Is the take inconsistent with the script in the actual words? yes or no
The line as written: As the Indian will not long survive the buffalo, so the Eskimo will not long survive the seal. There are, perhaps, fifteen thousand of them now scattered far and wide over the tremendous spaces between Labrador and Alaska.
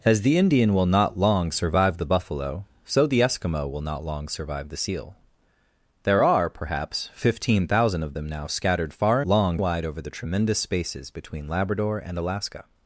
yes